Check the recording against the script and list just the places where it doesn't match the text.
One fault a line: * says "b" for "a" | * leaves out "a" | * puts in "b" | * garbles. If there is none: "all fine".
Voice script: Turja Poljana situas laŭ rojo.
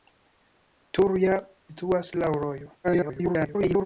* leaves out "Poljana"
* garbles